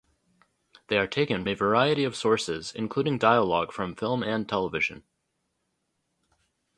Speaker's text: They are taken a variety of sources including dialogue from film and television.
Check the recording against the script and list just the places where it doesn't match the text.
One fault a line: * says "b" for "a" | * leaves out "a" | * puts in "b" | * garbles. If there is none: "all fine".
all fine